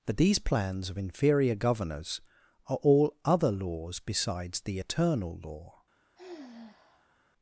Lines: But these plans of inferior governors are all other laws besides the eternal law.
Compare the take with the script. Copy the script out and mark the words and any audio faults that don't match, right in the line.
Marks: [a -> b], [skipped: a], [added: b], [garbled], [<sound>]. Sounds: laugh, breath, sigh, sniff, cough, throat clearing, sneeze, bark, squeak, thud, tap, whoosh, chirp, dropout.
But these plans of inferior governors are all other laws besides the eternal law. [sigh]